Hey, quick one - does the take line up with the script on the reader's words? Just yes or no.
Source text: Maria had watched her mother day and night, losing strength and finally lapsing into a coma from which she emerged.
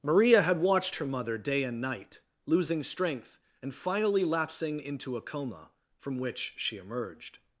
yes